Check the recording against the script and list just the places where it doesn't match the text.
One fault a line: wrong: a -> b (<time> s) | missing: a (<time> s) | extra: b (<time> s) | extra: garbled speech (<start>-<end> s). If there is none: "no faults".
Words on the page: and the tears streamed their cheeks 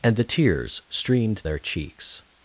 no faults